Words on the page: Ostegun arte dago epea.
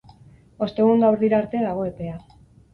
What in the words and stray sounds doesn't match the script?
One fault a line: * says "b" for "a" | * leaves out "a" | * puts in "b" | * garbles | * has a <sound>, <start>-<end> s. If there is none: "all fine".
* puts in "gauerdira"